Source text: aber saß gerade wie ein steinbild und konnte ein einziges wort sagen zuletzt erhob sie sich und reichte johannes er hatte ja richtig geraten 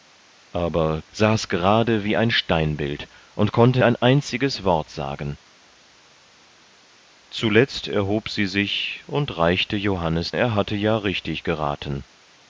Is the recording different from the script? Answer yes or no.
no